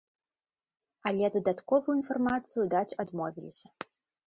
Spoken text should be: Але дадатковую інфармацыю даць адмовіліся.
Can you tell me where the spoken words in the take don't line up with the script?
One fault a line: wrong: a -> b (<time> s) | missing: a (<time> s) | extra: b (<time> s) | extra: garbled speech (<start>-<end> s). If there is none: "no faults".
no faults